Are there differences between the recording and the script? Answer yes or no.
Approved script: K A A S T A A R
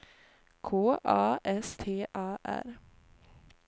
yes